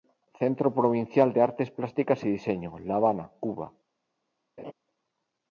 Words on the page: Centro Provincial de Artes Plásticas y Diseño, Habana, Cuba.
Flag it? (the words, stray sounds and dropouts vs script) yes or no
yes